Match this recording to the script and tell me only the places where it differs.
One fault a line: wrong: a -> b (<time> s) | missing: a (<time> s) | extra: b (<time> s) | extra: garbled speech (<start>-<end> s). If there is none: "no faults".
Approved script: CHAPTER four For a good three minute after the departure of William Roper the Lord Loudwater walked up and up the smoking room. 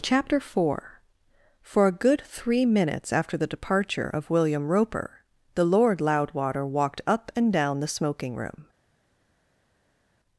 wrong: minute -> minutes (2.6 s)
wrong: up -> down (7.5 s)